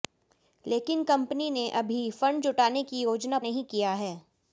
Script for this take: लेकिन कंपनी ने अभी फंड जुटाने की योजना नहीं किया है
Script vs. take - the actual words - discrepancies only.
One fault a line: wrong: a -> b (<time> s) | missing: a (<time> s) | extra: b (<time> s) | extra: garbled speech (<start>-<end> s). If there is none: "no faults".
no faults